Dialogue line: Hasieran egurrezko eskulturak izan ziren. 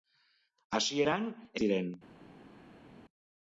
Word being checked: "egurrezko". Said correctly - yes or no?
no